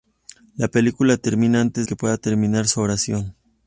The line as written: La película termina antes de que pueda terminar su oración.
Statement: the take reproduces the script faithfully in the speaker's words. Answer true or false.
false